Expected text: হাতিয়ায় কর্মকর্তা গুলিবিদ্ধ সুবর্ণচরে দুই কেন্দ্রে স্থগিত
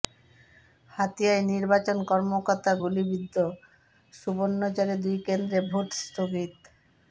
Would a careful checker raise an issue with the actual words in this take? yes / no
yes